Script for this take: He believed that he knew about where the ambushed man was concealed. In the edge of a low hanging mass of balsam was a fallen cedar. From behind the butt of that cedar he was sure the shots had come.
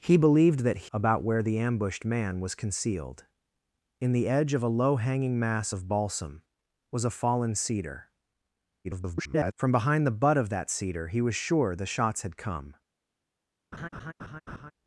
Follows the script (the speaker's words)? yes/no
no